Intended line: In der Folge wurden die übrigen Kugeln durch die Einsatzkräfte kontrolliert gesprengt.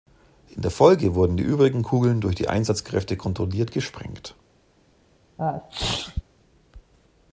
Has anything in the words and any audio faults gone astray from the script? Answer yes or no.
yes